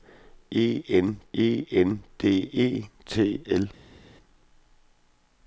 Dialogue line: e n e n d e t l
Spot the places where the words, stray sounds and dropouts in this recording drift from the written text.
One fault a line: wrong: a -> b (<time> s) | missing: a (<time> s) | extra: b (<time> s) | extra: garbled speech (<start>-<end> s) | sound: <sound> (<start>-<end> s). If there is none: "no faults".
no faults